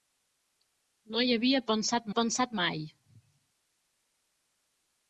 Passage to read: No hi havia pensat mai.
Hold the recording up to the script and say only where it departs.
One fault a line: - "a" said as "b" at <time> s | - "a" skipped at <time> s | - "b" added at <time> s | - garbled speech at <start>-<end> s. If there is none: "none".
- "pensat" added at 2.2 s